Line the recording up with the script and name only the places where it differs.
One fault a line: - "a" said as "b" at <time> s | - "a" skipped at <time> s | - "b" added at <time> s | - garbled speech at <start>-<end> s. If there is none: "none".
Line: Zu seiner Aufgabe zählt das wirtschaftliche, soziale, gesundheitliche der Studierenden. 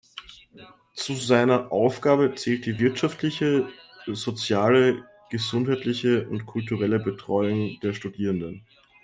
- "das" said as "die" at 2.7 s
- "und kulturelle Betreuung" added at 6.3 s